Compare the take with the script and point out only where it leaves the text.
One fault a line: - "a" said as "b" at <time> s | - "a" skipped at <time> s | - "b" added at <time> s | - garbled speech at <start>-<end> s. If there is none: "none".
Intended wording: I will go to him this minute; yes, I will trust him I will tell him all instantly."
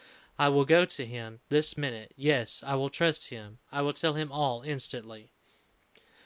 none